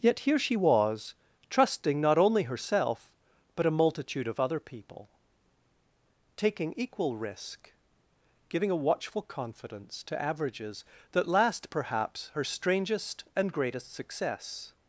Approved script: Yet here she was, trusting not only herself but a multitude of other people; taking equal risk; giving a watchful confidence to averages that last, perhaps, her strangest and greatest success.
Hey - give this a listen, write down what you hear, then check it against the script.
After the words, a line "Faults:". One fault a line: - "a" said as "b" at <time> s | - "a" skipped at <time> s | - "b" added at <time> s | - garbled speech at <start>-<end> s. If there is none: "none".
Yet here she was, trusting not only herself but a multitude of other people; taking equal risk; giving a watchful confidence to averages that last, perhaps, her strangest and greatest success.
Faults:
none